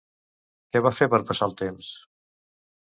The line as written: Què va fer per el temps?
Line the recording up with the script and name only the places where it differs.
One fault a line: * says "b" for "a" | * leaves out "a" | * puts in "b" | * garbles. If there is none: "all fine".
* puts in "passar"